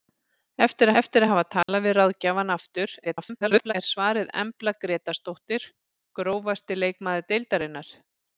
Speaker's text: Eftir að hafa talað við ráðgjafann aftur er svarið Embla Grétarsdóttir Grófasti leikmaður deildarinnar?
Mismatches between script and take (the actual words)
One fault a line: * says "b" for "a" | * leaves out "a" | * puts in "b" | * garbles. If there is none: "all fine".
* puts in "eftir"
* garbles